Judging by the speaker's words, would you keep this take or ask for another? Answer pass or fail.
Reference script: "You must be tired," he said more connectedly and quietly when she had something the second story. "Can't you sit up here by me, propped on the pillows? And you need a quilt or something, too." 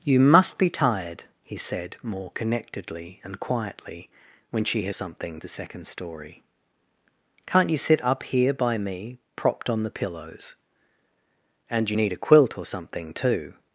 pass